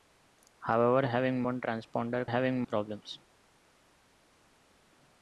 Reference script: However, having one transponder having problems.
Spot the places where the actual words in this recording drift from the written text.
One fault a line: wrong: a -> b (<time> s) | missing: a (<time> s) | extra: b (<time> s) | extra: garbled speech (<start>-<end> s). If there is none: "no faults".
no faults